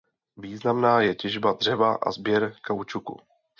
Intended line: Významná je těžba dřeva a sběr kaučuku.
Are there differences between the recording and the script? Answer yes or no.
no